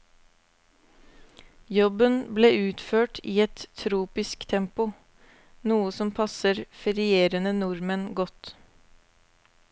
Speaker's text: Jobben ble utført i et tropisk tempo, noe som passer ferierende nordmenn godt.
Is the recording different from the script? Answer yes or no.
no